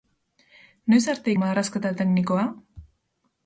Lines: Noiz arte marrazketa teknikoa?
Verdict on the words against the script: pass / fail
pass